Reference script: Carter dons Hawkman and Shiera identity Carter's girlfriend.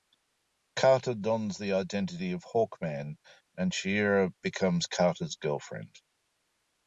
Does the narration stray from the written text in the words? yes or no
yes